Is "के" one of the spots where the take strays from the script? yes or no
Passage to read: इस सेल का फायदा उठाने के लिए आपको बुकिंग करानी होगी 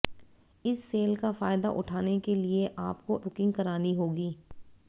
no